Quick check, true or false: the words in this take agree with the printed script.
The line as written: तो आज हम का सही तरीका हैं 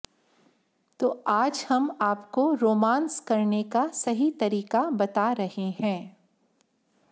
false